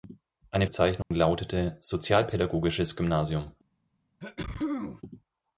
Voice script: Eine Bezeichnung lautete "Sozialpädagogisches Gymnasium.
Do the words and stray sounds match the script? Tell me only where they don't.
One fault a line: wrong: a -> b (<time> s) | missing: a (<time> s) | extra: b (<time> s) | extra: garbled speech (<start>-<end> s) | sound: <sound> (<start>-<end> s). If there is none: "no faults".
sound: dropout (1.0-1.1 s)
sound: sneeze (4.2-5.0 s)